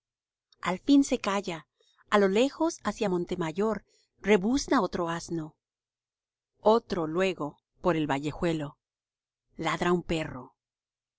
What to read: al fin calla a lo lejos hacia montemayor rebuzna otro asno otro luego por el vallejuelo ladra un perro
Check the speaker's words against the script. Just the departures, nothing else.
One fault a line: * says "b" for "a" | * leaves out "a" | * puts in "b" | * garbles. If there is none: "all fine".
* puts in "se"